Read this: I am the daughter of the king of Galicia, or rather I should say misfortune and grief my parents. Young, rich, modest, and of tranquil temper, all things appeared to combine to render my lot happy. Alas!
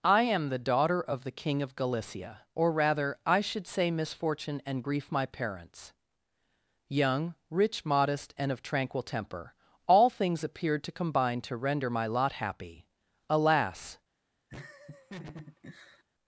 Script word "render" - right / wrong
right